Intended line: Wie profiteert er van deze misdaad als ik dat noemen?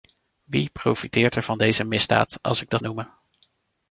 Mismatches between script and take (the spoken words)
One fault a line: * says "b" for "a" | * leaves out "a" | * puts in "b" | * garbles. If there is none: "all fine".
all fine